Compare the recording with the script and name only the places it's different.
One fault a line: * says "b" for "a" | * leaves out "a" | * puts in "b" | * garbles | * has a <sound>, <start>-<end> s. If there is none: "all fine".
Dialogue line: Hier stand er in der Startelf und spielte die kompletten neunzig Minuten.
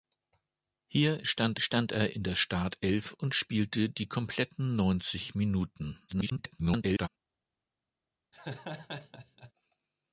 * puts in "stand"
* garbles
* has a laugh, 8.3-9.5 s